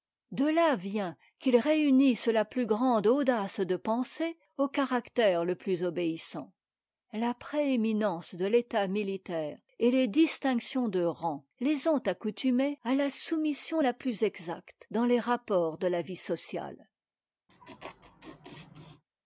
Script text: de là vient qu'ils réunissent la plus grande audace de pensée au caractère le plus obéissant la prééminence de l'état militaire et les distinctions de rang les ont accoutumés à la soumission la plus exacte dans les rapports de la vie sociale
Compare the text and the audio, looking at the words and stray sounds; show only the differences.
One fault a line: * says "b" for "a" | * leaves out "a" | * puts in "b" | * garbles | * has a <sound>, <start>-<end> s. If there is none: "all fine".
* has a laugh, 17.5-19.0 s